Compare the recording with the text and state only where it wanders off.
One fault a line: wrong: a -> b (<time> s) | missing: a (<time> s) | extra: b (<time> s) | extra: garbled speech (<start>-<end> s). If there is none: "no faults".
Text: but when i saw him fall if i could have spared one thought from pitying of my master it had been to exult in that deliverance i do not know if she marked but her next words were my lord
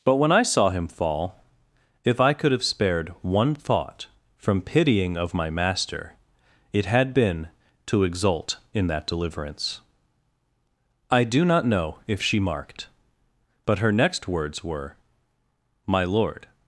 no faults